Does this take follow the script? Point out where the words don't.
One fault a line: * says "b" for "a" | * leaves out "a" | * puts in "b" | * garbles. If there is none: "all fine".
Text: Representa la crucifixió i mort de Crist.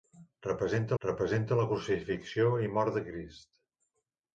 * puts in "representa"